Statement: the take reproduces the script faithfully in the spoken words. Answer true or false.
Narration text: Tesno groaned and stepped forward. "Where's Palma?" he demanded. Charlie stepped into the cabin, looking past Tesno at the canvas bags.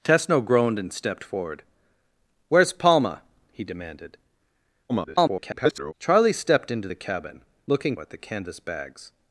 false